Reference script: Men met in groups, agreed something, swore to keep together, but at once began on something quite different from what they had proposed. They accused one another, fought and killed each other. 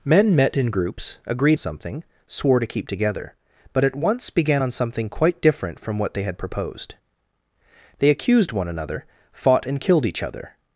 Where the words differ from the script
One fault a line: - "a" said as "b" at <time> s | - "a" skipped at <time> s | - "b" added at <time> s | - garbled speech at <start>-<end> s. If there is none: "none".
none